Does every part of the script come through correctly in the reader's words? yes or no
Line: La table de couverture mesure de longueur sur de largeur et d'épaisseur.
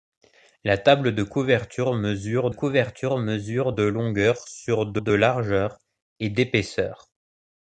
no